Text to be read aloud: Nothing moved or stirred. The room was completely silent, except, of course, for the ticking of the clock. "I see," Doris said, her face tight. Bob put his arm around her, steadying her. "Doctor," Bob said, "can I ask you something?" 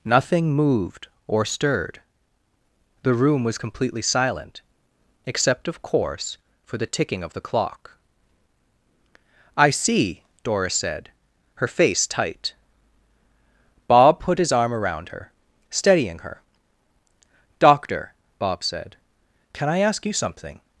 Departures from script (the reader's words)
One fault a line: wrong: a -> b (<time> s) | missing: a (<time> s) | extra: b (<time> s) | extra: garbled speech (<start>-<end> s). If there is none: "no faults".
no faults